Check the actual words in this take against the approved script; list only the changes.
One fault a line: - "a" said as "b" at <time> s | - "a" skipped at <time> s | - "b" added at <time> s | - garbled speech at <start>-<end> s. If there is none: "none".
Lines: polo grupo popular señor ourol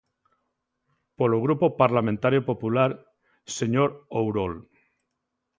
- "parlamentario" added at 1.8 s